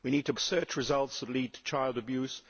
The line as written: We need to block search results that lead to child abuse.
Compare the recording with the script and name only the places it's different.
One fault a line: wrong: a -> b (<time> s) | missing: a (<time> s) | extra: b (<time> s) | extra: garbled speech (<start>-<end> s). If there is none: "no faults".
missing: block (0.3 s)